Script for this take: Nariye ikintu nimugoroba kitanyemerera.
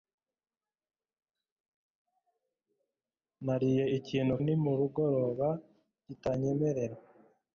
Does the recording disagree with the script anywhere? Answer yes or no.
no